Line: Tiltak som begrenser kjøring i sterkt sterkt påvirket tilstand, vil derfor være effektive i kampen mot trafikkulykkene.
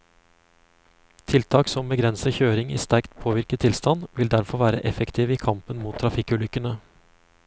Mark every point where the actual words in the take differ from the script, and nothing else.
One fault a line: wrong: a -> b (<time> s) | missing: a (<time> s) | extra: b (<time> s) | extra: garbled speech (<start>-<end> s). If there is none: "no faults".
missing: sterkt (3.1 s)